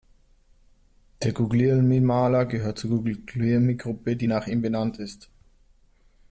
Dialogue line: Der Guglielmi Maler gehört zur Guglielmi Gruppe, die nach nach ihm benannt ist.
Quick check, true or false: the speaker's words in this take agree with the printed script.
false